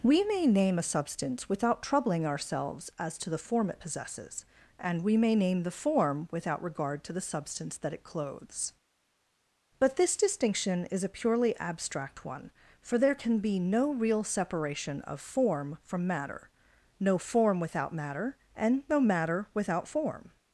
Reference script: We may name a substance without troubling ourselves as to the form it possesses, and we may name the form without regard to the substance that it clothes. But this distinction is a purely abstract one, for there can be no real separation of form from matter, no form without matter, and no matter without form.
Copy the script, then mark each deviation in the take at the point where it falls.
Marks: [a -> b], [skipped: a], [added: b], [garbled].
We may name a substance without troubling ourselves as to the form it possesses, and we may name the form without regard to the substance that it clothes. But this distinction is a purely abstract one, for there can be no real separation of form from matter, no form without matter, and no matter without form.